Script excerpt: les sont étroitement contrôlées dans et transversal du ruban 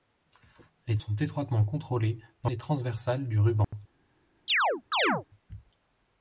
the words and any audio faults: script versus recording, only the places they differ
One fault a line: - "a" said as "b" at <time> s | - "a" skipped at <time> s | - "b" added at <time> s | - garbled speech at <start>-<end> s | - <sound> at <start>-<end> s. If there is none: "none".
- dropout at 3.6-3.7 s
- chirp at 4.5-5.2 s